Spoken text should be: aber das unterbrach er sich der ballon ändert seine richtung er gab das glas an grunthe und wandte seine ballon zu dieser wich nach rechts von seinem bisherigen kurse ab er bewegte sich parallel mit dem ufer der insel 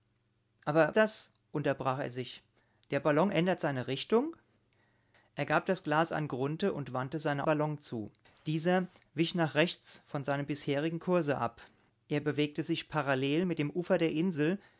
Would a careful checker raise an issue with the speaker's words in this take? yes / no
no